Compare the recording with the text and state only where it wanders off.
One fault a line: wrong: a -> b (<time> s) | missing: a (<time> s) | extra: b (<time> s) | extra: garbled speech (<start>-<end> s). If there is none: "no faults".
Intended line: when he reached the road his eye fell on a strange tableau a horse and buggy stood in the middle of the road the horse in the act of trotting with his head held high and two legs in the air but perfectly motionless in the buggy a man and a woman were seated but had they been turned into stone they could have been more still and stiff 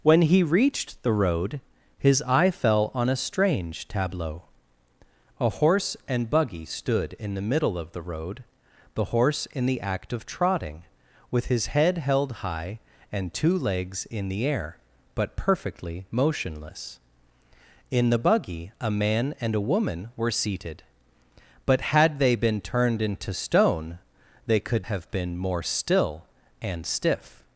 no faults